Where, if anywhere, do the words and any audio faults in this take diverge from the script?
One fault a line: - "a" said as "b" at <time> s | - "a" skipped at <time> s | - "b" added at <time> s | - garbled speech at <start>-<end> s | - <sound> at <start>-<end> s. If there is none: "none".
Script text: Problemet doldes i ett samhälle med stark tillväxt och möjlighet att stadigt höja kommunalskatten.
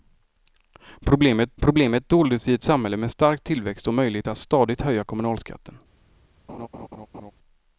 - "problemet" added at 1.6 s
- laugh at 6.5-7.3 s